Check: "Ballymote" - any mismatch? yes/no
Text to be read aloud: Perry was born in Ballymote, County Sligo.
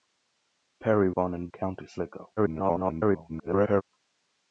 yes